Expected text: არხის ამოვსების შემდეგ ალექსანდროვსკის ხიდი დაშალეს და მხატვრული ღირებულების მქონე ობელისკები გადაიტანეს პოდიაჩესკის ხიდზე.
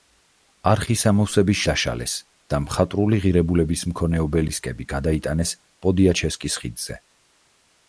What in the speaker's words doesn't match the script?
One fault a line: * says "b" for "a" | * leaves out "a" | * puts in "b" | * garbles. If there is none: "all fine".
* leaves out "შემდეგ ალექსანდროვსკის ხიდი"